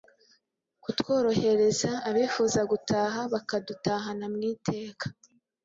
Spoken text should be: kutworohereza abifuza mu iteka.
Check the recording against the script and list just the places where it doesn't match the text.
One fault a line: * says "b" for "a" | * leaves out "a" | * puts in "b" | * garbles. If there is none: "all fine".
* puts in "gutaha bakadutahana"